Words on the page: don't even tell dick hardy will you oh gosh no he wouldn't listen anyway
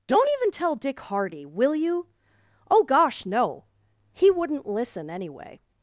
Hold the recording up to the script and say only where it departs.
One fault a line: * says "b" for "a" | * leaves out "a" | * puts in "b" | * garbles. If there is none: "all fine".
all fine